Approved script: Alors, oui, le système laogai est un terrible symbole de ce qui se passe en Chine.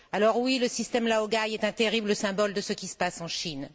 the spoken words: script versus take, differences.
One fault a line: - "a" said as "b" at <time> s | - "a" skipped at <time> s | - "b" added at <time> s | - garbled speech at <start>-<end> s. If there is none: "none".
none